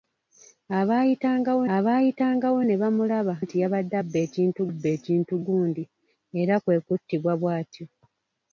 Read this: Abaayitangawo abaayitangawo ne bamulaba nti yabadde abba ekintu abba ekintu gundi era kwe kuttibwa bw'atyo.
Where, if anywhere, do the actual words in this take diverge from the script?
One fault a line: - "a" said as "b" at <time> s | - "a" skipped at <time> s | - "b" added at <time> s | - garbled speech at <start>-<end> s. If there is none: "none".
none